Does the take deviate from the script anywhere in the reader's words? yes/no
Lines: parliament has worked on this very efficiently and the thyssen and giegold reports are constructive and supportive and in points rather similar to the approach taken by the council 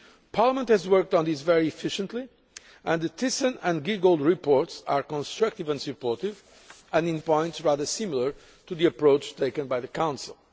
no